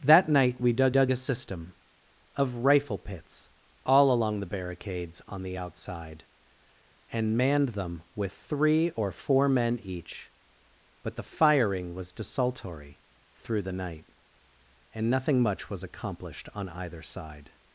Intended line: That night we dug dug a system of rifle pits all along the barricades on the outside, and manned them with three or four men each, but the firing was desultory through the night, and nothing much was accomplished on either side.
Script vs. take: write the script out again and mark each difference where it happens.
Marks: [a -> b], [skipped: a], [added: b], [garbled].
That night we dug dug a system of rifle pits all along the barricades on the outside, and manned them with three or four men each, but the firing was desultory through the night, and nothing much was accomplished on either side.